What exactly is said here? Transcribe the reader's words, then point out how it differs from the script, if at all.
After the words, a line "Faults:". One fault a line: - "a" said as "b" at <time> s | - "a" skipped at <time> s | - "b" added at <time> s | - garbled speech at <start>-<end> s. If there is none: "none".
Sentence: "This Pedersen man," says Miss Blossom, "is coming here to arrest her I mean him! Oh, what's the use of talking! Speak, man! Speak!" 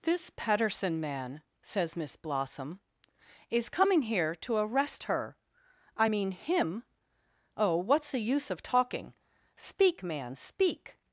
"This Pedersen man," says Miss Blossom, "is coming here to arrest her I mean him! Oh, what's the use of talking! Speak, man! Speak!"
Faults:
none